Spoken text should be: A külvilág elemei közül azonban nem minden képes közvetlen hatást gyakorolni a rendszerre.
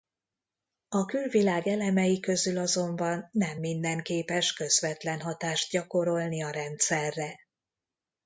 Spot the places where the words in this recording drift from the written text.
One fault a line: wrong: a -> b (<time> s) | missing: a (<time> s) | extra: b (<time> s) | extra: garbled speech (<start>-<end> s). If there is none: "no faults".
no faults